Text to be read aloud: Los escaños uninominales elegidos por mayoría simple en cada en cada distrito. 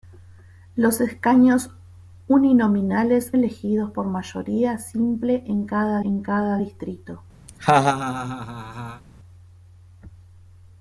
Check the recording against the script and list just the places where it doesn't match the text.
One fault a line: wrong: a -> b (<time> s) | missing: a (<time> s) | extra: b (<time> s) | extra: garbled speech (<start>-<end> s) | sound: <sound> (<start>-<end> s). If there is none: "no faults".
sound: laugh (7.5-9.0 s)